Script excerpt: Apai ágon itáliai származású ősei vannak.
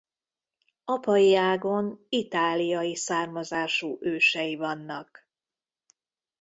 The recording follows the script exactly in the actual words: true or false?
true